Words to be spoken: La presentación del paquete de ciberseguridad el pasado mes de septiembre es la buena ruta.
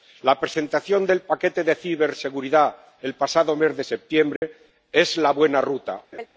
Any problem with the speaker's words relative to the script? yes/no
no